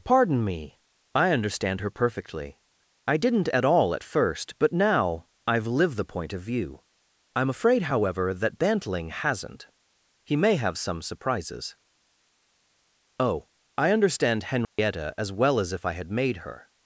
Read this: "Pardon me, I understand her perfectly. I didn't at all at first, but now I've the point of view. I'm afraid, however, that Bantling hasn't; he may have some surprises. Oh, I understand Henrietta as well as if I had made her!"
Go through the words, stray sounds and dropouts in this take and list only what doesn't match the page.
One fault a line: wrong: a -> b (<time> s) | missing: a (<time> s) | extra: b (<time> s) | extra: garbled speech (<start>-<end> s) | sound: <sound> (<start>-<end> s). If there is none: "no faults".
extra: lived (5.7 s)
sound: dropout (14.6-14.8 s)